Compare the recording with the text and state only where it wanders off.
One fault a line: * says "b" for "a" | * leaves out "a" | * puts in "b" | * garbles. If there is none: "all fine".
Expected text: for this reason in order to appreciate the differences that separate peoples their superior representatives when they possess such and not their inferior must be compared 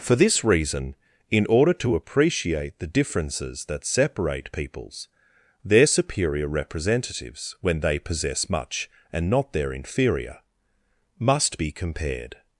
* says "much" for "such"